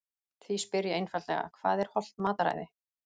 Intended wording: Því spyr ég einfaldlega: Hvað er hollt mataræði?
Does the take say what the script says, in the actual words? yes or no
yes